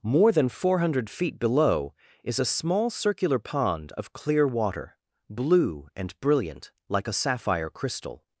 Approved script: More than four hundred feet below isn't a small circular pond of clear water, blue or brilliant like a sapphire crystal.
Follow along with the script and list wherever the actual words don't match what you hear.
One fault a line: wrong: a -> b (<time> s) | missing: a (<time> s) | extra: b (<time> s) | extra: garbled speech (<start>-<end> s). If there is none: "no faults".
wrong: isn't -> is (2.2 s)
wrong: or -> and (6.0 s)